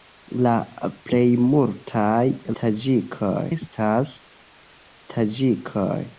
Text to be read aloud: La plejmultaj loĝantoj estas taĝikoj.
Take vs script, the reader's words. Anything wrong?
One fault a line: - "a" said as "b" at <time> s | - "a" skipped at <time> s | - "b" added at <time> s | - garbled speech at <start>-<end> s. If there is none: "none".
- "loĝantoj" said as "taĝikoj" at 2.6 s